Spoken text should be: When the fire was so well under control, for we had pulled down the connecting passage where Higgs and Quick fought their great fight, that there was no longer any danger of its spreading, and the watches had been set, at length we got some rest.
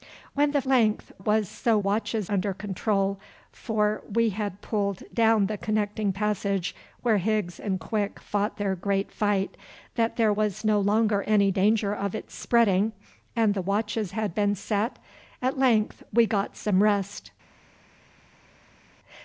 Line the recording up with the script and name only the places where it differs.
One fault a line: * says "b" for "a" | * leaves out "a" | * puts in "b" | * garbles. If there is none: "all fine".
* says "length" for "fire"
* says "watches" for "well"